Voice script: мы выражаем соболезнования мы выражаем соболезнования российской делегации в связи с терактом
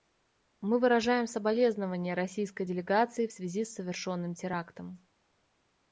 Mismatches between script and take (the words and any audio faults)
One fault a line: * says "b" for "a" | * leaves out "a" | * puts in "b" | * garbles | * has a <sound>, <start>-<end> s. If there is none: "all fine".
* leaves out "мы выражаем соболезнования"
* puts in "совершенным"